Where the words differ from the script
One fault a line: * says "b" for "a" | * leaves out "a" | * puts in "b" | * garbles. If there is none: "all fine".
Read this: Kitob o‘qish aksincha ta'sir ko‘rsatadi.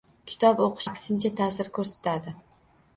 all fine